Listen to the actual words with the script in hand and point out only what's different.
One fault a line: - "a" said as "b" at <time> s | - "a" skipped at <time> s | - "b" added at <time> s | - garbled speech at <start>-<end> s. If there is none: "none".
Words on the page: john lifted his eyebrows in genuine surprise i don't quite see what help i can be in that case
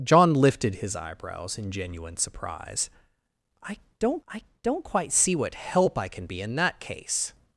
- "i don't" added at 4.3 s